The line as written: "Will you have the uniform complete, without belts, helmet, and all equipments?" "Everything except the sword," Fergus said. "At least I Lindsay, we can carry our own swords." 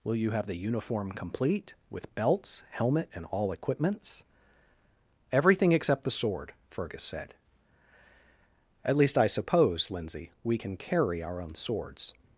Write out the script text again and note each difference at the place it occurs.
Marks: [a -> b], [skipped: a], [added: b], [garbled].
"Will you have the uniform complete, [without -> with] belts, helmet, and all equipments?" "Everything except the sword," Fergus said. "At least I [added: suppose] Lindsay, we can carry our own swords."